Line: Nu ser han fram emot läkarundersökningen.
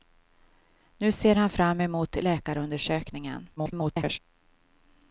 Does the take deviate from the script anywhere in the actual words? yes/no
yes